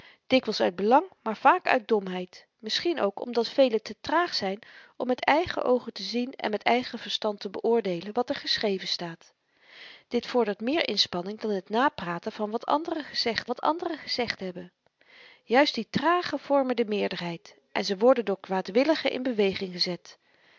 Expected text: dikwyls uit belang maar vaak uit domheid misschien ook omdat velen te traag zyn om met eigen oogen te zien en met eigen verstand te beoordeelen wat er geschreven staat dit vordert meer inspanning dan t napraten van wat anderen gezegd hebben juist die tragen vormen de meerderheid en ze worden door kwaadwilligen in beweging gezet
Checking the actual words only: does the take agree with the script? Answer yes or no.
no